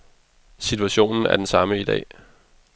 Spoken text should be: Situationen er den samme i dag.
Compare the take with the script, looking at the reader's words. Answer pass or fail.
pass